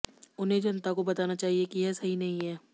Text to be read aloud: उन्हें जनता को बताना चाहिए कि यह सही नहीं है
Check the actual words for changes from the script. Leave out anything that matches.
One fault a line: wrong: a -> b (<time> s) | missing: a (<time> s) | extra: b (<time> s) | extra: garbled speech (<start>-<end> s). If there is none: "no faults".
no faults